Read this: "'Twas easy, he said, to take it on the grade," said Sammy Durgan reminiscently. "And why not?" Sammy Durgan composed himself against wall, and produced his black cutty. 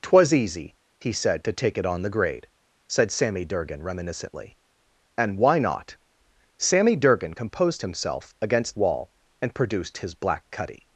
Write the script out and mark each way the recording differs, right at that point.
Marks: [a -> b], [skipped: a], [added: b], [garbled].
"'Twas easy, he said, to take it on the grade," said Sammy Durgan reminiscently. "And why not?" Sammy Durgan composed himself against wall, and produced his black cutty.